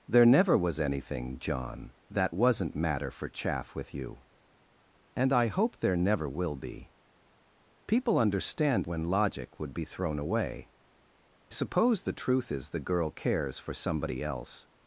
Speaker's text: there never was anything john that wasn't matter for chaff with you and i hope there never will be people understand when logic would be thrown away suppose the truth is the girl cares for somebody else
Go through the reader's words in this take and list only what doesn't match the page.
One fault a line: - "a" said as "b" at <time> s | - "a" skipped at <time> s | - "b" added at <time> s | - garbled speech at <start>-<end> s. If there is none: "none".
none